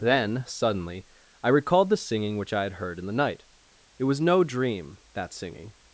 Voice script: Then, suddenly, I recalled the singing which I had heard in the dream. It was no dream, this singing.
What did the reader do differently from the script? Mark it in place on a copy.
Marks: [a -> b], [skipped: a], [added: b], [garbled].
Then, suddenly, I recalled the singing which I had heard in the [dream. -> night] It was no dream, [this -> that] singing.